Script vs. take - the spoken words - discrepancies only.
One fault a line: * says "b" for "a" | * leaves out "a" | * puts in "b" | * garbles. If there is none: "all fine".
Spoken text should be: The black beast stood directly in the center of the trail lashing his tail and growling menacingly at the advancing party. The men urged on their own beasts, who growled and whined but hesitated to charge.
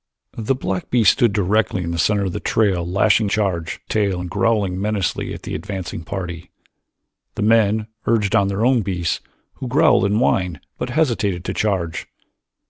* says "charge" for "his"